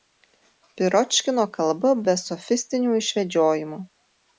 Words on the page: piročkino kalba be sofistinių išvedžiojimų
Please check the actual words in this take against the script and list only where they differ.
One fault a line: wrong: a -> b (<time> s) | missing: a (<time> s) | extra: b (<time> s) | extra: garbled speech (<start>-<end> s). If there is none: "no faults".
no faults